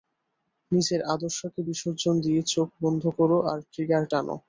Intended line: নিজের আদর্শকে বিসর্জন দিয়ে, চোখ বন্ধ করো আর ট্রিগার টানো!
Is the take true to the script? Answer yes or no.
yes